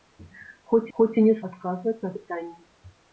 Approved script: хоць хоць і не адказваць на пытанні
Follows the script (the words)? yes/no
yes